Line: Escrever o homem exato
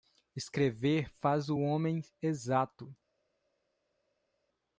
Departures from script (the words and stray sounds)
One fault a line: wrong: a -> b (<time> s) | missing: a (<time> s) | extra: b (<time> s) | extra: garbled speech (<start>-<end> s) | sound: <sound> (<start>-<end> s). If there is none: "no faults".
extra: faz (1.1 s)